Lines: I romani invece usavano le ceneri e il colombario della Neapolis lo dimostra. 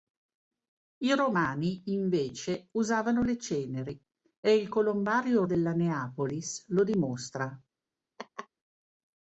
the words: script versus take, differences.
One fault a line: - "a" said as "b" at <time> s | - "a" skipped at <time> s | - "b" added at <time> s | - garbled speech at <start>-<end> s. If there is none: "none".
none